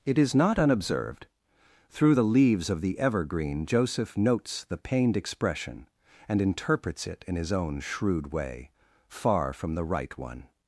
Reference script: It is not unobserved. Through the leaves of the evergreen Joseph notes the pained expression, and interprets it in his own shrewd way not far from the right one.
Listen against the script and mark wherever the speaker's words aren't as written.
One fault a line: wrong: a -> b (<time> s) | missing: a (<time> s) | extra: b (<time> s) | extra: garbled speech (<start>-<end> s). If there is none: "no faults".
missing: not (8.7 s)